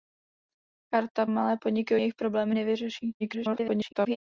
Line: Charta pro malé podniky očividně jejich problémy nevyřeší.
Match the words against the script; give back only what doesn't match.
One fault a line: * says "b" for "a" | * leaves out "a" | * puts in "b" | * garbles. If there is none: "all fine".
* leaves out "pro"
* leaves out "očividně"
* garbles